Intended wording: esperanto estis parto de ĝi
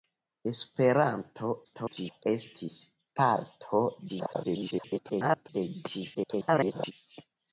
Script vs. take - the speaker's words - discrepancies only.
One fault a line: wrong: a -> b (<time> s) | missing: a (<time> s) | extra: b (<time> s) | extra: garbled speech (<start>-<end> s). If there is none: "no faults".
extra: garbled speech (1.6-2.2 s)
extra: garbled speech (4.1-5.5 s)
extra: garbled speech (6.1-6.9 s)